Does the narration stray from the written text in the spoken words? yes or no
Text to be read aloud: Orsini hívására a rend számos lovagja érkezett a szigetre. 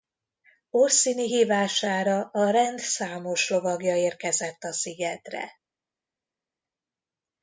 no